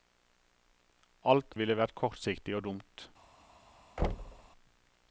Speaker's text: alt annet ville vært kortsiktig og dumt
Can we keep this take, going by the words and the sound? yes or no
no